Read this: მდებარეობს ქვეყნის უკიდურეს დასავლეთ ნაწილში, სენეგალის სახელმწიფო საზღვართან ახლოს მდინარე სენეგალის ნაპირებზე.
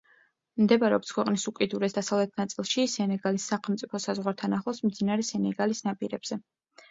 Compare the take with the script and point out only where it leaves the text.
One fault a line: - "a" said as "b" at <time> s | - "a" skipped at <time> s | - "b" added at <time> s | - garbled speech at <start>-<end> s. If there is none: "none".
none